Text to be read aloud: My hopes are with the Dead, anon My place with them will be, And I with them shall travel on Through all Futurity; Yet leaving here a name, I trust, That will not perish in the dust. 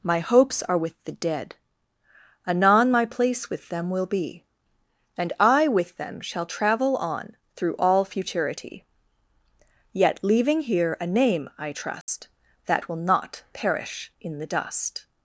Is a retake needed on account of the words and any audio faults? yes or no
yes